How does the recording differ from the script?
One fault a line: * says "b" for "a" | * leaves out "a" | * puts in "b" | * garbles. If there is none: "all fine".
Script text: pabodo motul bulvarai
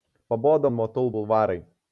all fine